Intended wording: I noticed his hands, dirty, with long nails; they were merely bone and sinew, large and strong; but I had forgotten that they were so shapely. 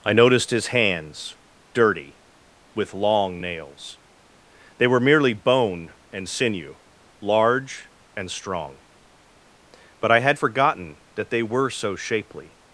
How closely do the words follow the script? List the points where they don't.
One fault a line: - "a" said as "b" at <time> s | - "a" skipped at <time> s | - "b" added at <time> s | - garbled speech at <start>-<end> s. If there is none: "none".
none